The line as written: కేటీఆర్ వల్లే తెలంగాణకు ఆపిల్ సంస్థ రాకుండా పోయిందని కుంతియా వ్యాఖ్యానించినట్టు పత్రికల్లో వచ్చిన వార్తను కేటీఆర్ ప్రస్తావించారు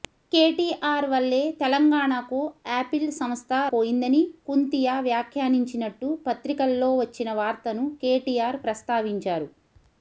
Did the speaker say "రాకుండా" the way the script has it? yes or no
no